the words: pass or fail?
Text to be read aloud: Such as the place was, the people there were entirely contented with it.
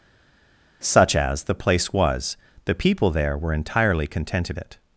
fail